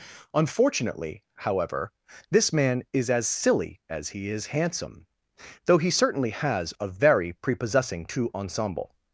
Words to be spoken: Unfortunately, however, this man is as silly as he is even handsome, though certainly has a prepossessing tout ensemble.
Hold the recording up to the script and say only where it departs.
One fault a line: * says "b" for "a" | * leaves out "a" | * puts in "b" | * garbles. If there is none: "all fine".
* leaves out "even"
* puts in "he"
* puts in "very"